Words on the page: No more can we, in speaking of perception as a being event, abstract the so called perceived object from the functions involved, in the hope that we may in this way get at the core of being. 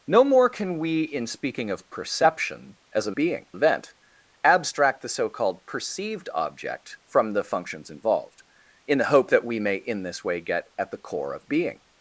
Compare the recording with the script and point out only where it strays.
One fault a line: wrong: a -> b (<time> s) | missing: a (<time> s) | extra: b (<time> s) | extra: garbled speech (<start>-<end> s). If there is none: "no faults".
no faults